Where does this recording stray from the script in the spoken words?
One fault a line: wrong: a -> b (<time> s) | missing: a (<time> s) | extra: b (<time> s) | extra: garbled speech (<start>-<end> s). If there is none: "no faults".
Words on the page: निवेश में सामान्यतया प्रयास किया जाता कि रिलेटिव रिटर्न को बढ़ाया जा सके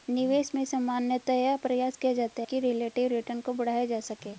no faults